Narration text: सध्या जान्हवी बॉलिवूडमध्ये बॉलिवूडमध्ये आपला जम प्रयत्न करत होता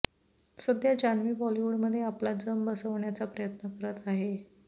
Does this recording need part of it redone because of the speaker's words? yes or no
yes